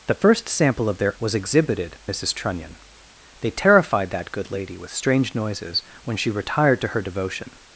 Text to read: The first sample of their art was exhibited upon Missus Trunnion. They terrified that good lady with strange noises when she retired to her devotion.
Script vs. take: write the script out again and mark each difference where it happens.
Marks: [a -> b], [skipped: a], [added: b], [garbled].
The first sample of their [skipped: art] was exhibited [skipped: upon] Missus Trunnion. They terrified that good lady with strange noises when she retired to her devotion.